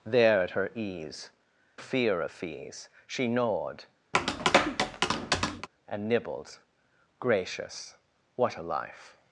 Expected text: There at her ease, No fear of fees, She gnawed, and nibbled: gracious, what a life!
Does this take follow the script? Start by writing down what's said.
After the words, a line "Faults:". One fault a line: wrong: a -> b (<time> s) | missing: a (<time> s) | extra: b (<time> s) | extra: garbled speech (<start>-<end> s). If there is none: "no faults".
There at her ease, Fear of fees, She gnawed, and nibbled: gracious, what a life!
Faults:
missing: No (1.3 s)